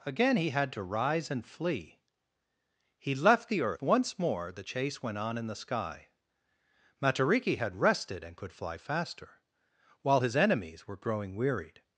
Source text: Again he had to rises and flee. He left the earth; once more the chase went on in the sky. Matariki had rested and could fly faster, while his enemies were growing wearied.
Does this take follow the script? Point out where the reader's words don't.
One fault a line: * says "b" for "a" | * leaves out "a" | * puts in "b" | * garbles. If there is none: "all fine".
* says "rise" for "rises"